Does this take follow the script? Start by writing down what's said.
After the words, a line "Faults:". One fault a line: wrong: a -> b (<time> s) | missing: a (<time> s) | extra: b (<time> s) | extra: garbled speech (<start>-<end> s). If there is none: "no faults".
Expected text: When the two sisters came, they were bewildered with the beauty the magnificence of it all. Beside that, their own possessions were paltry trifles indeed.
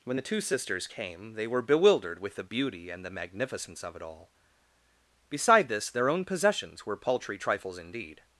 When the two sisters came, they were bewildered with the beauty and the magnificence of it all. Beside this, their own possessions were paltry trifles indeed.
Faults:
extra: and (2.9 s)
wrong: that -> this (5.7 s)